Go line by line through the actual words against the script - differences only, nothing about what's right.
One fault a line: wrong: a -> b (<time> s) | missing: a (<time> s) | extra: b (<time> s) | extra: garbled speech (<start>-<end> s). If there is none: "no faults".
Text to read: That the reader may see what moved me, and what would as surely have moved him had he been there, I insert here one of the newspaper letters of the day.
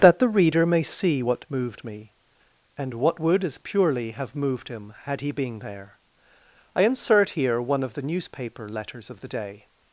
wrong: surely -> purely (3.6 s)